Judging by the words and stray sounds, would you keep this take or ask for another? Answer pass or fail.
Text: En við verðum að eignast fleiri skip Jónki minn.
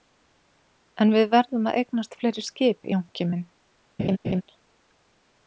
fail